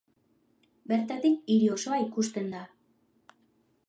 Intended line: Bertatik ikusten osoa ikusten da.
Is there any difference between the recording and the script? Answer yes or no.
yes